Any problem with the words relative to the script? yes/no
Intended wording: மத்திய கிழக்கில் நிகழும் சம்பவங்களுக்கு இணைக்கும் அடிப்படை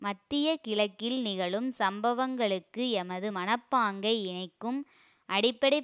yes